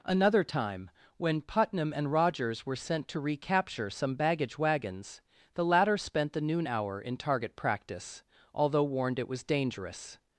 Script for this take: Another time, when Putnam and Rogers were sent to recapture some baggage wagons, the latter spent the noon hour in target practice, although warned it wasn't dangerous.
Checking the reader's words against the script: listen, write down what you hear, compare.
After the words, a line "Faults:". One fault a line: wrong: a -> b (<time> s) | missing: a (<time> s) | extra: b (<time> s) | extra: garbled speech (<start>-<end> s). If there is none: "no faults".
Another time, when Putnam and Rogers were sent to recapture some baggage wagons, the latter spent the noon hour in target practice, although warned it was dangerous.
Faults:
wrong: wasn't -> was (9.3 s)